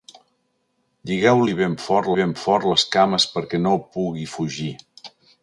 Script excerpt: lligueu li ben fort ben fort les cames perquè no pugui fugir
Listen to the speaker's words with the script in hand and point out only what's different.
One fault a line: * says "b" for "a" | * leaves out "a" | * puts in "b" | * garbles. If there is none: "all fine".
all fine